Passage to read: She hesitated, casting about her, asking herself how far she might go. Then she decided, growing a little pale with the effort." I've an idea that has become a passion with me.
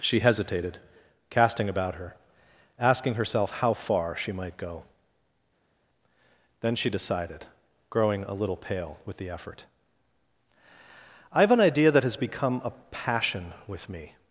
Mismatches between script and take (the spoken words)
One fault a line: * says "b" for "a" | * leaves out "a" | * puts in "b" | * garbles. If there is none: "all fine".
all fine